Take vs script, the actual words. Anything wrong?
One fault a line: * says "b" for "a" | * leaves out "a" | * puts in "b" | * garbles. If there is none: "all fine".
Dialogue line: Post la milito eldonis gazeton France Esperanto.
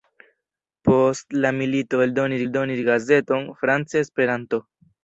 * puts in "eldonis"